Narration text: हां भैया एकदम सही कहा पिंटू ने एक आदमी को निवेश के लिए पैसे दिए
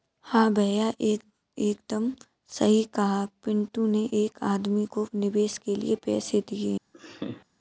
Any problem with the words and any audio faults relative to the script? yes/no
yes